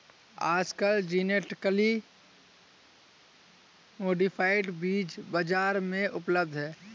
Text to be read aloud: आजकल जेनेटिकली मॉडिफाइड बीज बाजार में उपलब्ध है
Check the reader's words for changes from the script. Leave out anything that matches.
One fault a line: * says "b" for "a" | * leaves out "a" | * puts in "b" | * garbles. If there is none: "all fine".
all fine